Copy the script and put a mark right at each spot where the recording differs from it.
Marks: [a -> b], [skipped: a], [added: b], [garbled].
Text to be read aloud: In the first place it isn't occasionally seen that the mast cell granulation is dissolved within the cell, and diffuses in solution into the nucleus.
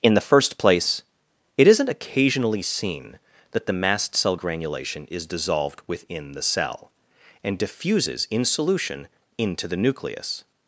In the first place it isn't occasionally seen that the mast cell granulation is dissolved within the cell, and diffuses in solution into the nucleus.